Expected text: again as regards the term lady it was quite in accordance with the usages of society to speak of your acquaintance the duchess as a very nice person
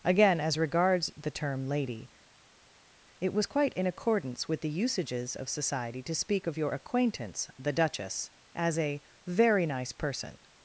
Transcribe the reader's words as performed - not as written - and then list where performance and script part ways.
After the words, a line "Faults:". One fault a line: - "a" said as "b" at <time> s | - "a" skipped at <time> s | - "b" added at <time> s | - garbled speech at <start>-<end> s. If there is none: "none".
again as regards the term lady it was quite in accordance with the usages of society to speak of your acquaintance the duchess as a very nice person
Faults:
none